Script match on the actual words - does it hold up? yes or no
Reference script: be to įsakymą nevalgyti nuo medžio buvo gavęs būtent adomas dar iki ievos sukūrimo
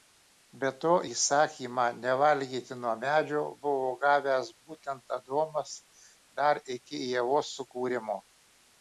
yes